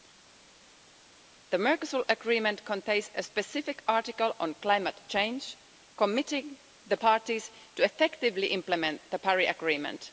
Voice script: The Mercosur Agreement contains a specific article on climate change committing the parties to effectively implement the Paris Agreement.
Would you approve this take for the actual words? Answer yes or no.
yes